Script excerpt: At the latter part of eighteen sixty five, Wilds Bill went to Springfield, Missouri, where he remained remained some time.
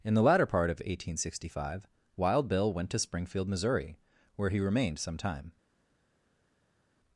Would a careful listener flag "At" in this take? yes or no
yes